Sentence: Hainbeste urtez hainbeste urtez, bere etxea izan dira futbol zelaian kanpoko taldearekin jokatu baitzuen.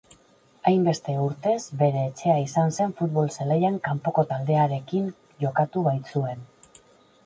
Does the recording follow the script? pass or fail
fail